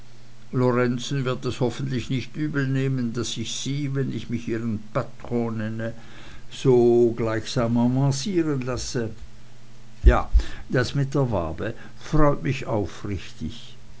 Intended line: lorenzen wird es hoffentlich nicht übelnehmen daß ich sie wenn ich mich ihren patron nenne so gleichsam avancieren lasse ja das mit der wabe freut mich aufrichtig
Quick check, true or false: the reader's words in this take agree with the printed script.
true